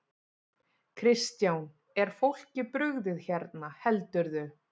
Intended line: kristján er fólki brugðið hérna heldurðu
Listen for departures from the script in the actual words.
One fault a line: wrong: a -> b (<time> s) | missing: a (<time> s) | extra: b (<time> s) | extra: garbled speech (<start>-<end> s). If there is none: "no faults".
no faults